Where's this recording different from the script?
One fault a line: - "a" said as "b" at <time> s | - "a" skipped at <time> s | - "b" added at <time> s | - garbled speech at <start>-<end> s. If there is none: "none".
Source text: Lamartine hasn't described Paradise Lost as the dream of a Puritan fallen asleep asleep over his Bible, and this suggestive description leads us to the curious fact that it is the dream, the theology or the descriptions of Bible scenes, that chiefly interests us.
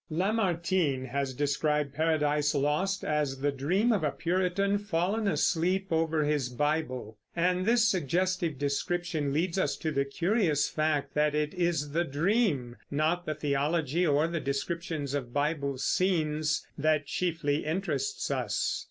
- "hasn't" said as "has" at 1.1 s
- "asleep" skipped at 5.9 s
- "not" added at 12.9 s